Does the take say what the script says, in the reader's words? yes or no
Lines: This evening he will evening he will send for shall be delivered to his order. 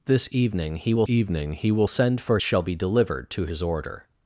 yes